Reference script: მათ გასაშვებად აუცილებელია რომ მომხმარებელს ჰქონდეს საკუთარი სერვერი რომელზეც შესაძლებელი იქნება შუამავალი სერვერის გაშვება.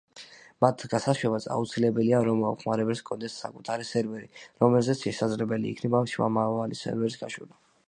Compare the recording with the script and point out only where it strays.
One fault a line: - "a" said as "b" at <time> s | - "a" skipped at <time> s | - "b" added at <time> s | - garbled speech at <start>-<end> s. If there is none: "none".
none